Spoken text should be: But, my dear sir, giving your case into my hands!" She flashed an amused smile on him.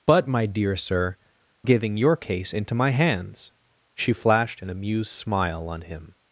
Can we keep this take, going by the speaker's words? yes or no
yes